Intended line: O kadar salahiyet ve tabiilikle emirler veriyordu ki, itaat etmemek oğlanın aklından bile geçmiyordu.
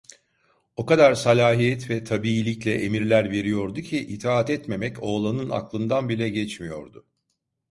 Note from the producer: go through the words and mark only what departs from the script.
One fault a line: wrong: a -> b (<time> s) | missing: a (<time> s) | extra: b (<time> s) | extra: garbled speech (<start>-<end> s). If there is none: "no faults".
no faults